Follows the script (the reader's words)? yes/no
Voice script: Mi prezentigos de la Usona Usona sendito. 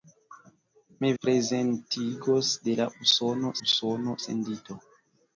yes